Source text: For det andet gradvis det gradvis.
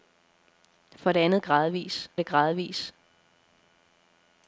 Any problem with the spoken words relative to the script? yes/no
no